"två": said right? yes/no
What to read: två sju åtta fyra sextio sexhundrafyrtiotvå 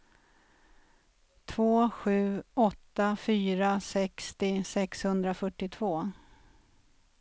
yes